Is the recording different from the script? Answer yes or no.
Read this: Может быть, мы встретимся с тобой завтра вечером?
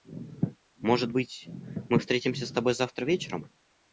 no